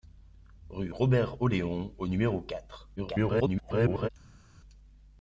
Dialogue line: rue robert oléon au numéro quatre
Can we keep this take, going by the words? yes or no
no